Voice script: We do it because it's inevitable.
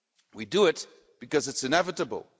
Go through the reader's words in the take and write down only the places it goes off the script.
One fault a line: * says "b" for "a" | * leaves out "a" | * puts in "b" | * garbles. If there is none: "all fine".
all fine